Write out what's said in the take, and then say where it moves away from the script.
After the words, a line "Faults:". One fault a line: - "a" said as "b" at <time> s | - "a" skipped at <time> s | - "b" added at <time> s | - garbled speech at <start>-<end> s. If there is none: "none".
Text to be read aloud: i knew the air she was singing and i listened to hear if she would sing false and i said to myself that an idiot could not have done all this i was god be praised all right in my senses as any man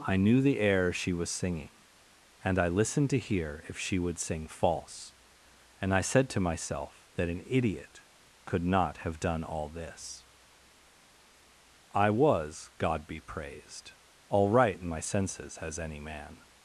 i knew the air she was singing and i listened to hear if she would sing false and i said to myself that an idiot could not have done all this i was god be praised all right in my senses as any man
Faults:
none